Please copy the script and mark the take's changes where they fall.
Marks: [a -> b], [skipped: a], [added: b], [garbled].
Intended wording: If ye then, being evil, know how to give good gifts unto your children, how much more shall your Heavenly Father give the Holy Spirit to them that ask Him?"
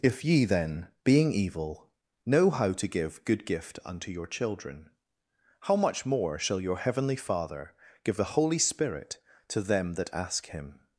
If ye then, being evil, know how to give good [gifts -> gift] unto your children, how much more shall your Heavenly Father give the Holy Spirit to them that ask Him?"